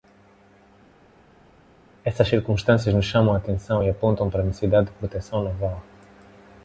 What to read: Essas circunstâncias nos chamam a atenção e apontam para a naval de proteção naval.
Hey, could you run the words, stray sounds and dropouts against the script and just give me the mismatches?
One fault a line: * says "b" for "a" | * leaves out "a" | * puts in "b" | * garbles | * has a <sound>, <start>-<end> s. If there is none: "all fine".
* says "necessidade" for "naval"